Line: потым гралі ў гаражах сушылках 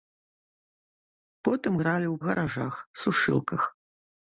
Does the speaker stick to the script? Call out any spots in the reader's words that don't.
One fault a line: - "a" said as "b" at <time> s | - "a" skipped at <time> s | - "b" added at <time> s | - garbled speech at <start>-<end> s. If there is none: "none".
none